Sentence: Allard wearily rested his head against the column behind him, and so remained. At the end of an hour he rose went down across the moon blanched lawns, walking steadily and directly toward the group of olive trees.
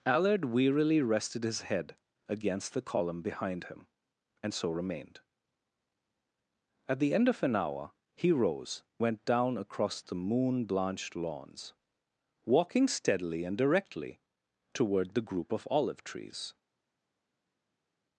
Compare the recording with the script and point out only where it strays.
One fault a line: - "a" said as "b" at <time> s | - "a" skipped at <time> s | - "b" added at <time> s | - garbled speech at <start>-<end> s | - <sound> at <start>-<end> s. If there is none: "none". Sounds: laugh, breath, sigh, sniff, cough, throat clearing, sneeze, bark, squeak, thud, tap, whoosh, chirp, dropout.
none